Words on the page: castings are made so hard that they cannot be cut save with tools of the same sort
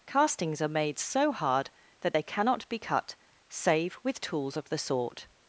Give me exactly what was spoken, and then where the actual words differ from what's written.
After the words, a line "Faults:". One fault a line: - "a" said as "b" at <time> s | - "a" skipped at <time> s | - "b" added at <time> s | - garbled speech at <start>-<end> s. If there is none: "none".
castings are made so hard that they cannot be cut save with tools of the sort
Faults:
- "same" skipped at 4.8 s